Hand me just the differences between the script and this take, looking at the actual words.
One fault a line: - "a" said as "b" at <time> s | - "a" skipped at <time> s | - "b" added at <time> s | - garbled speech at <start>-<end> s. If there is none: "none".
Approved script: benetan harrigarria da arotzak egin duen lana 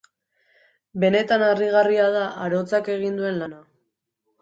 none